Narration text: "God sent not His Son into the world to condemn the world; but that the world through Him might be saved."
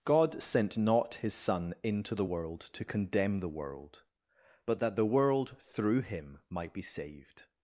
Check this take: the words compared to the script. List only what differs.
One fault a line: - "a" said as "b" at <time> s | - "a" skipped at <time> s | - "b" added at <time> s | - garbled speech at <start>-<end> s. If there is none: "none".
none